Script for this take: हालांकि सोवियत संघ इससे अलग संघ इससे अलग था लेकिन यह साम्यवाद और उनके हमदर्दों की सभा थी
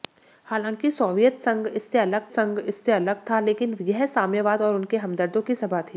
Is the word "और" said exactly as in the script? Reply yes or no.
yes